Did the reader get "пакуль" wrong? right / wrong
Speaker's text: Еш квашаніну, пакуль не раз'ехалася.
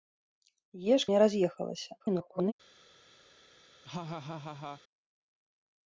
wrong